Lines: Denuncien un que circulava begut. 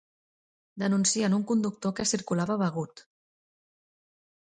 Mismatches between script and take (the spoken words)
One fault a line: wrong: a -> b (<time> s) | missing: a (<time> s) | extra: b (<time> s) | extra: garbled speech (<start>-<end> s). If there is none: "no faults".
extra: conductor (1.5 s)